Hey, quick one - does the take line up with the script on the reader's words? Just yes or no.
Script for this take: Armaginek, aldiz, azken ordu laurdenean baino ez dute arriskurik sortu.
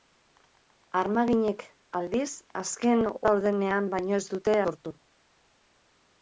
no